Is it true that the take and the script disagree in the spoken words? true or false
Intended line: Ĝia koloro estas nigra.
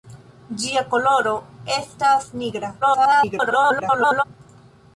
true